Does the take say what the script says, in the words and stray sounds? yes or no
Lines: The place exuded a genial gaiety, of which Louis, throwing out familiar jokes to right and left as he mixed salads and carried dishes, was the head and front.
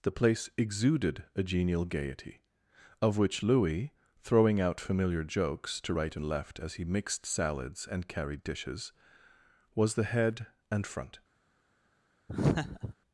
no